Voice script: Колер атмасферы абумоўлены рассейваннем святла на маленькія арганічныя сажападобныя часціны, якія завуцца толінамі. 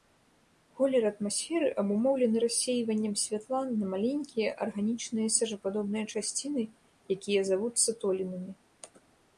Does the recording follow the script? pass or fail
pass